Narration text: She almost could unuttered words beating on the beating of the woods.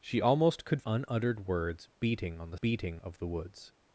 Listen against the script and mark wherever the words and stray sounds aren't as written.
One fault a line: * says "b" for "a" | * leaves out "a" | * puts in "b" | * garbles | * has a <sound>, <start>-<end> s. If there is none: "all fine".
all fine